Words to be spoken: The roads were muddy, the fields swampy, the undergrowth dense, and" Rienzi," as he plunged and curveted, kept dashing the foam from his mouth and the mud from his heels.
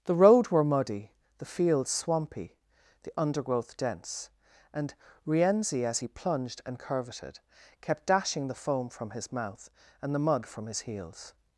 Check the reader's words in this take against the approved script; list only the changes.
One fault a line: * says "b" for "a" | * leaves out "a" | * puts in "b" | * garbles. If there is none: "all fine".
* says "road" for "roads"